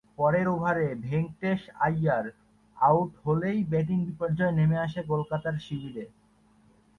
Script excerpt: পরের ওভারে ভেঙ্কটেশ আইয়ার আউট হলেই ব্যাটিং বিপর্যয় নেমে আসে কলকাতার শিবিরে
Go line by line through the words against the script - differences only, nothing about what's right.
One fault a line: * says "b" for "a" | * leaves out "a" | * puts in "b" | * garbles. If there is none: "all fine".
all fine